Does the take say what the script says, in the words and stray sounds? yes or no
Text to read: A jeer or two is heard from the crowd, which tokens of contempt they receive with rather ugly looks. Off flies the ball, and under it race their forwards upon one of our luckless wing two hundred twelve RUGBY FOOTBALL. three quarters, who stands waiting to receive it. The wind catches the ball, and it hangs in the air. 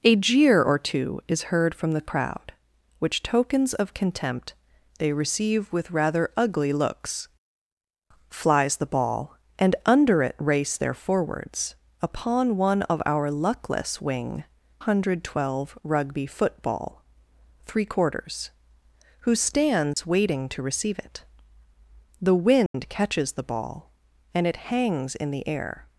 no